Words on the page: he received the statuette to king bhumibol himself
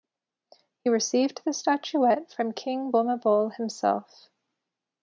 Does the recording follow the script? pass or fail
fail